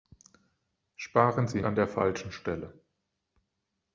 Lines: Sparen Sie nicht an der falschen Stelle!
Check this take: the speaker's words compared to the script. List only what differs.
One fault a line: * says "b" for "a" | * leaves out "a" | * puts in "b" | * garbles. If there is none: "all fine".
* leaves out "nicht"